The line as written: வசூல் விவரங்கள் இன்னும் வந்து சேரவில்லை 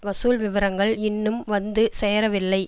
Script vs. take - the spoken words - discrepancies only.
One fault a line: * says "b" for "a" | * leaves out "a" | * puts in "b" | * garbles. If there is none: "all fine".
all fine